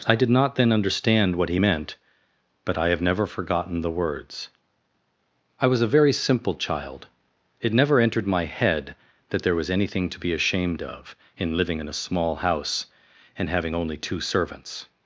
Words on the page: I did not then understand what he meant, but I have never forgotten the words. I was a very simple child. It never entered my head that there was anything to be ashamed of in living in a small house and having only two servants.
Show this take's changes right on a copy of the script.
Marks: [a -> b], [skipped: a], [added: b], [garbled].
I did not then understand what he meant, but I have never forgotten the words. I was a very simple child. It never entered my head that there was anything to be ashamed of in living in a small house and having only two servants.